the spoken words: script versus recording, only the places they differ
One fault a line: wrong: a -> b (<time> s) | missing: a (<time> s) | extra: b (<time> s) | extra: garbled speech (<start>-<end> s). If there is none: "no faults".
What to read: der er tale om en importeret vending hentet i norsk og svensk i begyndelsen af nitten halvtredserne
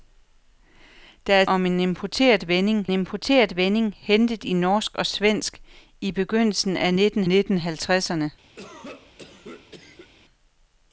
missing: tale (1.4 s)
extra: importeret vending (2.9 s)
extra: nitten (7.2 s)